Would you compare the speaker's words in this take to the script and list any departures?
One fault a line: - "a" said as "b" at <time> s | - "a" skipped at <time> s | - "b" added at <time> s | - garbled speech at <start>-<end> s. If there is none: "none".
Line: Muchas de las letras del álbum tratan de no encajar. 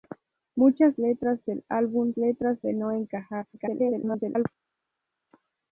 - "de las" skipped at 0.9 s
- "tratan" said as "letras" at 2.2 s
- garbled speech at 3.5-4.5 s